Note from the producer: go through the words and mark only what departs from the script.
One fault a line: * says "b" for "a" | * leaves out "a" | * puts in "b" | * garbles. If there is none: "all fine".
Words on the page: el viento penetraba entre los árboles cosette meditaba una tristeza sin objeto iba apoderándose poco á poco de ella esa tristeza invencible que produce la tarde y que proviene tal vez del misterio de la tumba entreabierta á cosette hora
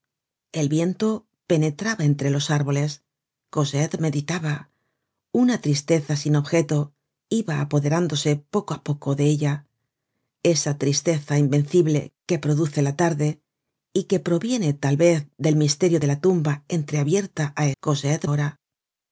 all fine